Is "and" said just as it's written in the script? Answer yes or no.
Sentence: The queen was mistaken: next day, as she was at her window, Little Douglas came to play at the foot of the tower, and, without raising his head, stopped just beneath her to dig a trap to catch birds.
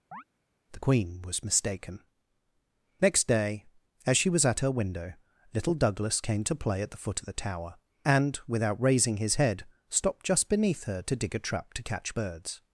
yes